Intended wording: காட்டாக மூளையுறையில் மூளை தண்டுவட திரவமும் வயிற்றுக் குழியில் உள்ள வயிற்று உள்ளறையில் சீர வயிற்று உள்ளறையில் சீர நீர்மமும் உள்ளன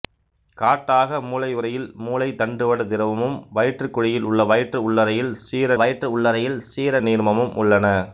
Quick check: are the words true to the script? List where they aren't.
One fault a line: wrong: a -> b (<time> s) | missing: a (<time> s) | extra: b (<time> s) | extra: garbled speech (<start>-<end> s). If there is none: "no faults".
no faults